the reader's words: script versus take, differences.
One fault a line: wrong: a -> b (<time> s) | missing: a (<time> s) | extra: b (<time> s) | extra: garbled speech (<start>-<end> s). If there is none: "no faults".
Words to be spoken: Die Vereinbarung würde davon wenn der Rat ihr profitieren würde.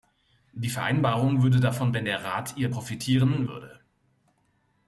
no faults